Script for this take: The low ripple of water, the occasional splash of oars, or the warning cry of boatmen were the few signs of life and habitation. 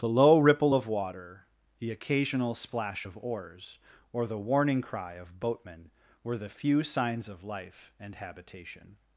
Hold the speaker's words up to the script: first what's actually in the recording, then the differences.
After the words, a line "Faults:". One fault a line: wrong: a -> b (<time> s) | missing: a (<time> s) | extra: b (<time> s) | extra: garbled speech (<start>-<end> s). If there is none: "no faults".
The low ripple of water, the occasional splash of oars, or the warning cry of boatmen were the few signs of life and habitation.
Faults:
no faults